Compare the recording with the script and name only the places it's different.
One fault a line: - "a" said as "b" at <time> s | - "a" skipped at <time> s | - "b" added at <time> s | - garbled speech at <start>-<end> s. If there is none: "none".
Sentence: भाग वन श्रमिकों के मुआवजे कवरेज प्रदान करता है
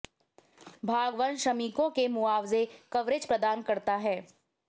none